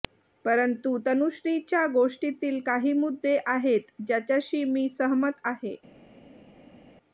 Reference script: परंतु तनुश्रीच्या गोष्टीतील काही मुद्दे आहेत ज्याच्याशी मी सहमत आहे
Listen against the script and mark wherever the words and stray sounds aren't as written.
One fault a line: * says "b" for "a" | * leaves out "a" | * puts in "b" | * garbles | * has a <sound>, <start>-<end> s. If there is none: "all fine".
all fine